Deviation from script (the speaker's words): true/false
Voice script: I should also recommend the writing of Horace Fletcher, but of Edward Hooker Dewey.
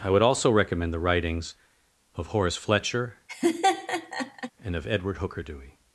true